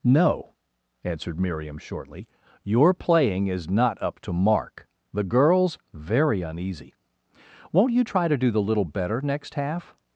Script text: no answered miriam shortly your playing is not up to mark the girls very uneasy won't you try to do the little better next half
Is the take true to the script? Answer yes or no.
yes